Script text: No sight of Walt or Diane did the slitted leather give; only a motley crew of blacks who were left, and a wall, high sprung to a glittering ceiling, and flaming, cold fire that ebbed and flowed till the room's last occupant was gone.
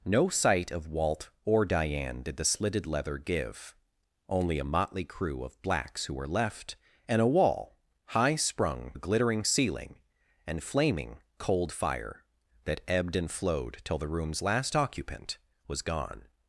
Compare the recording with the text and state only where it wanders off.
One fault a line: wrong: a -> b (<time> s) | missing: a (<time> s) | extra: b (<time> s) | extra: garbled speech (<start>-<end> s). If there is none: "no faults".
missing: to (8.9 s)